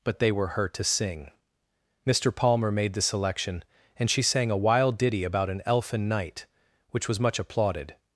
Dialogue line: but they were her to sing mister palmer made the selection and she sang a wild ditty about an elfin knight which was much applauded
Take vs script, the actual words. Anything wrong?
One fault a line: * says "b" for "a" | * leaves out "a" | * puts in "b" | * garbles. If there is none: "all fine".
all fine